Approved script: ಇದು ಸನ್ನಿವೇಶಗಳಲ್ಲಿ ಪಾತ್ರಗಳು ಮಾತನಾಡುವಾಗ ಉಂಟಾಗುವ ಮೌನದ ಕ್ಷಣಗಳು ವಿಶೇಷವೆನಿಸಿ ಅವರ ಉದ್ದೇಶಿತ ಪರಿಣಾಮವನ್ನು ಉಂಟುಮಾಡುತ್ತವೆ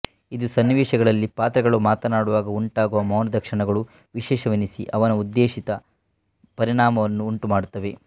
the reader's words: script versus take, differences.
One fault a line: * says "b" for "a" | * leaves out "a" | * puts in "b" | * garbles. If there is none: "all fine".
* says "ಅವನ" for "ಅವರ"